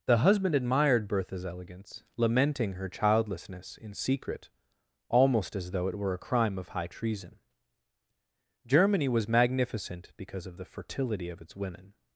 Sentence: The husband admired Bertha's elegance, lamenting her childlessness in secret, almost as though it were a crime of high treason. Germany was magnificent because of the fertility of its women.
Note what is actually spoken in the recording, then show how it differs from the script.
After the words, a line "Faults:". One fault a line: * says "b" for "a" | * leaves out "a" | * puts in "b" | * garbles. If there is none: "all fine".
The husband admired Bertha's elegance, lamenting her childlessness in secret, almost as though it were a crime of high treason. Germany was magnificent because of the fertility of its women.
Faults:
all fine